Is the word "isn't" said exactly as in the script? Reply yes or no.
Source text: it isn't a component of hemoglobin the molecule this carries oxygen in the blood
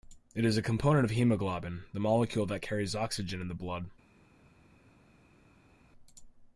no